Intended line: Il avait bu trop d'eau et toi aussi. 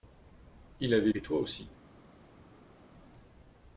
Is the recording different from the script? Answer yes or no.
yes